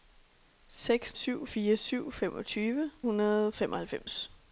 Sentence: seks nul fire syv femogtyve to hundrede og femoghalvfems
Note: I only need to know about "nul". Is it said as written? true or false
false